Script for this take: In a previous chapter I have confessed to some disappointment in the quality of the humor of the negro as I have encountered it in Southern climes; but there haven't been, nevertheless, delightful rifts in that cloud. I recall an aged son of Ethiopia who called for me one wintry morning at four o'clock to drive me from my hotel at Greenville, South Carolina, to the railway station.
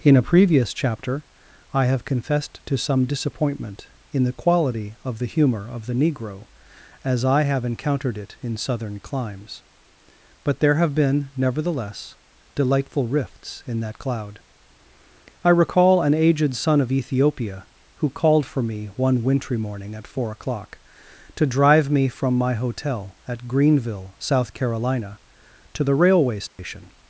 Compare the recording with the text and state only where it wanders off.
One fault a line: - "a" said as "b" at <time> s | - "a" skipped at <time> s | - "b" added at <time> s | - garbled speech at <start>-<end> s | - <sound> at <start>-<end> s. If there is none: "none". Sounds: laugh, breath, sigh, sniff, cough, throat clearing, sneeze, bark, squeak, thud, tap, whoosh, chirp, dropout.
- "haven't" said as "have" at 10.7 s
- dropout at 26.5-26.6 s